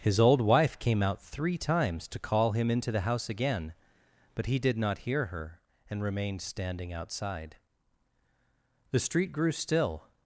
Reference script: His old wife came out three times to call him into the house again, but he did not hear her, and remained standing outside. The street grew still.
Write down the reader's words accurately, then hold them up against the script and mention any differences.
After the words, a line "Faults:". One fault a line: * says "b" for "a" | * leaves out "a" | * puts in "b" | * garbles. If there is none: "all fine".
His old wife came out three times to call him into the house again, but he did not hear her, and remained standing outside. The street grew still.
Faults:
all fine